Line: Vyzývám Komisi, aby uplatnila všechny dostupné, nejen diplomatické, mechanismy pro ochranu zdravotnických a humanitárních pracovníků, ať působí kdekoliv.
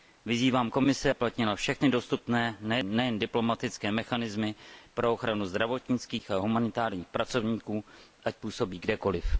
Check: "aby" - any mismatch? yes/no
yes